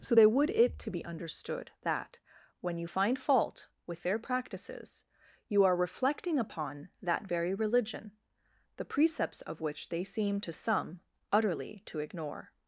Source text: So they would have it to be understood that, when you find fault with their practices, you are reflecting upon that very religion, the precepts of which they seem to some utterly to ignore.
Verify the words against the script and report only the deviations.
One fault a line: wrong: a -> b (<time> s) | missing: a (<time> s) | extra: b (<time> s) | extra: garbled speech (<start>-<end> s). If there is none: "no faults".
missing: have (0.5 s)